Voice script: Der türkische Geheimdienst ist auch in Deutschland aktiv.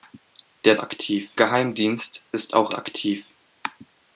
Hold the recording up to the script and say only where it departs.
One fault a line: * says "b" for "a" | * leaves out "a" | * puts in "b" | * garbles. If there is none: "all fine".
* says "aktiv" for "türkische"
* leaves out "in Deutschland"